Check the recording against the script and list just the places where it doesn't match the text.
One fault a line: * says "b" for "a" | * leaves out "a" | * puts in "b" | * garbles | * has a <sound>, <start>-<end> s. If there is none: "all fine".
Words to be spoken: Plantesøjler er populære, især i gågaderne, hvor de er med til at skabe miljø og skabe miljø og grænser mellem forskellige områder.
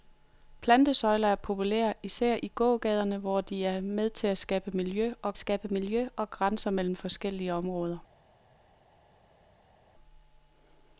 all fine